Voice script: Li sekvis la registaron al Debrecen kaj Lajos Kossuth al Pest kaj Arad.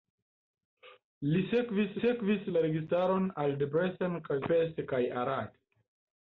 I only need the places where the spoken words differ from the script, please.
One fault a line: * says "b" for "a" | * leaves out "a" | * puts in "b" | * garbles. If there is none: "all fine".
* puts in "sekvis"
* leaves out "Lajos Kossuth al"